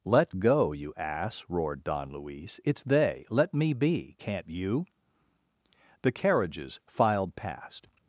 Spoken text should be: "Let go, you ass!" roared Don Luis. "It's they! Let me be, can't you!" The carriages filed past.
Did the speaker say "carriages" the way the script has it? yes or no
yes